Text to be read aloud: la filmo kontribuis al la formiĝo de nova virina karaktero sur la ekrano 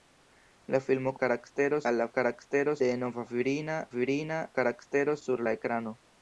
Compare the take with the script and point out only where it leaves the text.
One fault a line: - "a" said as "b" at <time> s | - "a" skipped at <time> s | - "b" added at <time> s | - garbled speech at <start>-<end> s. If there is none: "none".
- "kontribuis" said as "karaktero" at 1.3 s
- "formiĝo" said as "karaktero" at 2.2 s
- "virina" added at 4.0 s